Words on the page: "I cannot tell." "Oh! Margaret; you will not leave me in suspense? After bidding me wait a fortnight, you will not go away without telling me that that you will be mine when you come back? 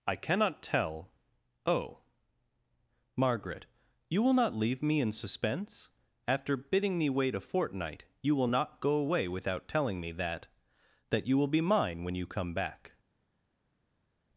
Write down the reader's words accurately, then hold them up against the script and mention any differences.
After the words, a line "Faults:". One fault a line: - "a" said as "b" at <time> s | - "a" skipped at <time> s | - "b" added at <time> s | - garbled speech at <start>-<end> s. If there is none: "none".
"I cannot tell." "Oh! Margaret; you will not leave me in suspense? After bidding me wait a fortnight, you will not go away without telling me that that you will be mine when you come back?
Faults:
none